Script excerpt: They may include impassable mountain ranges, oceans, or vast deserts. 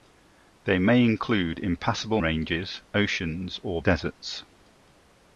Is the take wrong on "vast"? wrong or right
wrong